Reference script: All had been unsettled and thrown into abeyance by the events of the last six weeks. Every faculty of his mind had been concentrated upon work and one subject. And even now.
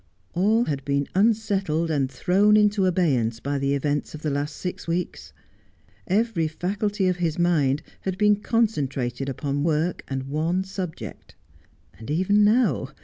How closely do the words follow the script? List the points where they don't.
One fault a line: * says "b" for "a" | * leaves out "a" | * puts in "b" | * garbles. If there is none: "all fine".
all fine